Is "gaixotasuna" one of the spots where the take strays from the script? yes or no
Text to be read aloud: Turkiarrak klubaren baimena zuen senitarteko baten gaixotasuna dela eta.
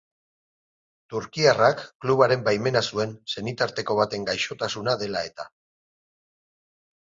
no